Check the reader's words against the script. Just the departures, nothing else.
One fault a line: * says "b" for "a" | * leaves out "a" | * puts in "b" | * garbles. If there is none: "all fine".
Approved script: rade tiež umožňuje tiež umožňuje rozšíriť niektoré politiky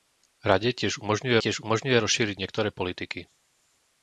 all fine